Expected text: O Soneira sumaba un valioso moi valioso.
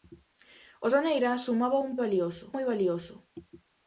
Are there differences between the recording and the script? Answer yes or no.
no